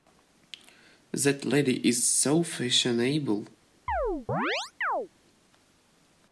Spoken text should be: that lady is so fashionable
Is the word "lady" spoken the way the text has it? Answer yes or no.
yes